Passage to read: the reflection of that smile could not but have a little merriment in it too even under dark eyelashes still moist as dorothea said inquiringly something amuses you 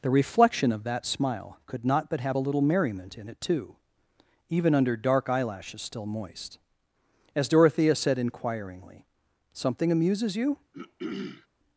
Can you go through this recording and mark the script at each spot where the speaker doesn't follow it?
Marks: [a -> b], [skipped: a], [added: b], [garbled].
the reflection of that smile could not but have a little merriment in it too even under dark eyelashes still moist as dorothea said inquiringly something amuses you